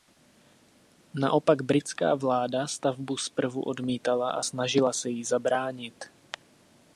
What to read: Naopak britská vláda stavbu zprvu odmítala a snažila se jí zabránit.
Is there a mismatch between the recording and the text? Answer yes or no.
no